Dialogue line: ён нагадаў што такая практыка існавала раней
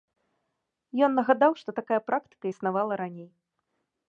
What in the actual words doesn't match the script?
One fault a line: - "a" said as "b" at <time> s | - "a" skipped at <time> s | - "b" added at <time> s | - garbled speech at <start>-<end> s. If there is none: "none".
none